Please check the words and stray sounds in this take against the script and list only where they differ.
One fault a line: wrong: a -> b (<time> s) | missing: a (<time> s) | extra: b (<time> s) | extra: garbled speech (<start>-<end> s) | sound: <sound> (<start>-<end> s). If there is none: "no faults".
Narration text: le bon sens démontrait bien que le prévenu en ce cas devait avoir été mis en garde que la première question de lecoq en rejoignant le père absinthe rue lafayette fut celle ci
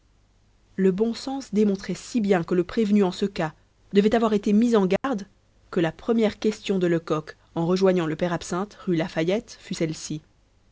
extra: si (1.9 s)
sound: dropout (5.0-5.0 s)